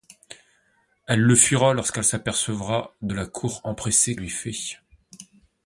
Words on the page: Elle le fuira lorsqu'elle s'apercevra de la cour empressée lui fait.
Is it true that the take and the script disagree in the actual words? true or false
false